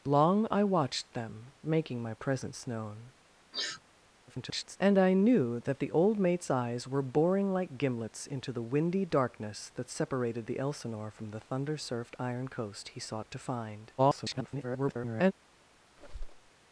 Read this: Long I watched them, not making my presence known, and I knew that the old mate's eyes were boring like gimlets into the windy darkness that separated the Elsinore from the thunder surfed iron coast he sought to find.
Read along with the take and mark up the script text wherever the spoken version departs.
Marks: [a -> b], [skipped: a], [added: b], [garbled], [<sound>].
Long I watched them, [skipped: not] making my presence known, [sniff] [garbled] and I knew that the old mate's eyes were boring like gimlets into the windy darkness that separated the Elsinore from the thunder surfed iron coast he sought to find. [garbled] [squeak]